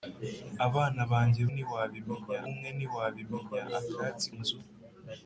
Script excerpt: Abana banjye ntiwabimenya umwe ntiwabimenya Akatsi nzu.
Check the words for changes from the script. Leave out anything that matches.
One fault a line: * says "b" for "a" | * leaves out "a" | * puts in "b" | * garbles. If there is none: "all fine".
all fine